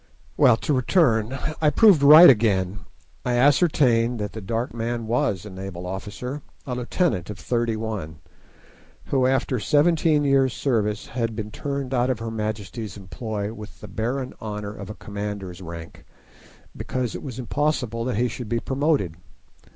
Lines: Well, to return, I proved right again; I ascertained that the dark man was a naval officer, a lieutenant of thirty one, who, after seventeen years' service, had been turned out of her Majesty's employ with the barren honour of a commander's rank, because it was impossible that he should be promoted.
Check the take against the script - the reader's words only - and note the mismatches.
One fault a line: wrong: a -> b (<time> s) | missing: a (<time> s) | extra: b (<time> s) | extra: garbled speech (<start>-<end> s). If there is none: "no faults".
no faults